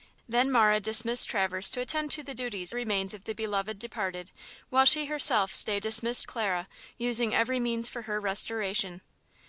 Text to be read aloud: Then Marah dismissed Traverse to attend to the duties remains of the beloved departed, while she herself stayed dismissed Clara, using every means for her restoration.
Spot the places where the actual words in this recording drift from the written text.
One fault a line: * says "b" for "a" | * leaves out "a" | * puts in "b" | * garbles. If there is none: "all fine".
all fine